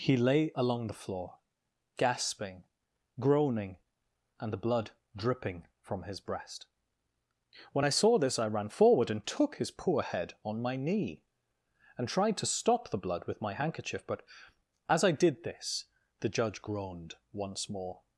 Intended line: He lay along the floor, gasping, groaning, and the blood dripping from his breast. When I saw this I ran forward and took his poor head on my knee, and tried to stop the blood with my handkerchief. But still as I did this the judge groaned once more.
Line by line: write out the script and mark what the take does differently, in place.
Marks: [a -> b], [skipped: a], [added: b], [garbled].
He lay along the floor, gasping, groaning, and the blood dripping from his breast. When I saw this I ran forward and took his poor head on my knee, and tried to stop the blood with my handkerchief. But [skipped: still] as I did this the judge groaned once more.